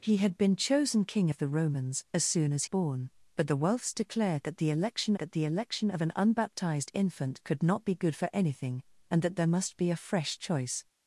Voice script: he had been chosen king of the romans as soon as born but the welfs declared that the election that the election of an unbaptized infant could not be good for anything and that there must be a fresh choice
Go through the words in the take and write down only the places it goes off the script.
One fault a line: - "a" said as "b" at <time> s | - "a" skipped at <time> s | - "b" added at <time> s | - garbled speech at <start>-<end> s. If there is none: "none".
none